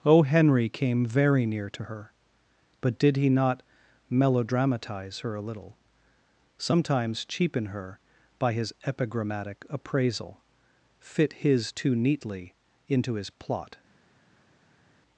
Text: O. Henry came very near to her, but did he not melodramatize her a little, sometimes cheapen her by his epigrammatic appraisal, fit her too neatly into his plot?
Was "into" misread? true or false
false